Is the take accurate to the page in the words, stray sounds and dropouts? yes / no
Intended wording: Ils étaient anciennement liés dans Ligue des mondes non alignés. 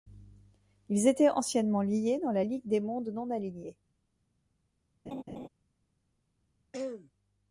no